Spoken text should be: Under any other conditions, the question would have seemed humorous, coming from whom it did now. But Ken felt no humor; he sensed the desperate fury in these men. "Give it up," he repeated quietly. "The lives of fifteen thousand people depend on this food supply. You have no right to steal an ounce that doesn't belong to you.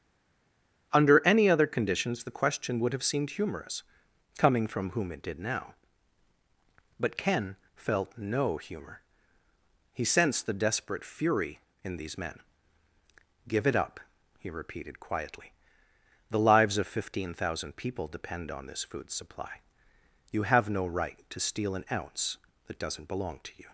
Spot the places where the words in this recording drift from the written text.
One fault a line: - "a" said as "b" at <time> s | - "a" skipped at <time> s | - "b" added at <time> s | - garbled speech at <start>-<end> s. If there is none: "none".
none